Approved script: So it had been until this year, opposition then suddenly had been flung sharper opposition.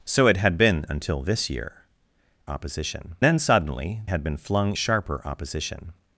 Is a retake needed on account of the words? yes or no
no